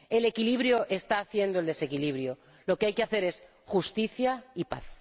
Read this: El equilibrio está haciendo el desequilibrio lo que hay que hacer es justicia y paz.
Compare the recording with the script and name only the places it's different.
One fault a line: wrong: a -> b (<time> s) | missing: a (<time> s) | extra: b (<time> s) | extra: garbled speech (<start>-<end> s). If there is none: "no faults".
no faults